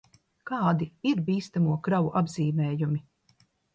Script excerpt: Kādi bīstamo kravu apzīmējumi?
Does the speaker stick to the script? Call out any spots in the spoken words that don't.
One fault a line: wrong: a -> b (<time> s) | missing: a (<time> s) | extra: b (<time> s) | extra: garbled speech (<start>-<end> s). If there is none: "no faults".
extra: ir (1.1 s)